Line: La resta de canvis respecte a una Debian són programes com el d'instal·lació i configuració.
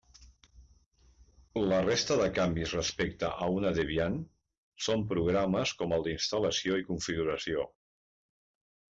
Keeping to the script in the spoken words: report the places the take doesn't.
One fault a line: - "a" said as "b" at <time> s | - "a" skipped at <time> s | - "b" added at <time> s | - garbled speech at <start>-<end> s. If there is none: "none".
none